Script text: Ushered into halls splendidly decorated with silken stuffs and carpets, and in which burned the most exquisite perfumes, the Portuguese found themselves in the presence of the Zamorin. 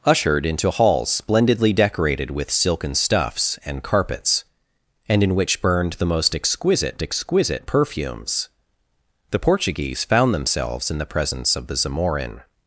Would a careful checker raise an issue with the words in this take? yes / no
yes